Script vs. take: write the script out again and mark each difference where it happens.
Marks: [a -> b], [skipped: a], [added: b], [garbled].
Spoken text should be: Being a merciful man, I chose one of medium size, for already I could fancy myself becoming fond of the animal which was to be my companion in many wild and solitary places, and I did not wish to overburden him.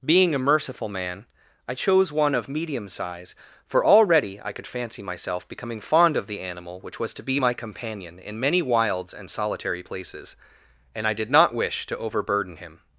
Being a merciful man, I chose one of medium size, for already I could fancy myself becoming fond of the animal which was to be my companion in many [wild -> wilds] and solitary places, and I did not wish to overburden him.